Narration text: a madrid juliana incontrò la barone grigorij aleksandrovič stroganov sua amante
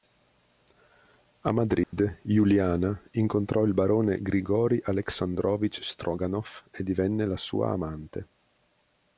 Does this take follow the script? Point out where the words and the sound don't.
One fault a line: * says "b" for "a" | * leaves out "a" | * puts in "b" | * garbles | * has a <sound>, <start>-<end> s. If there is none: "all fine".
* has a dropout, 1.8-1.9 s
* says "il" for "la"
* puts in "e divenne la"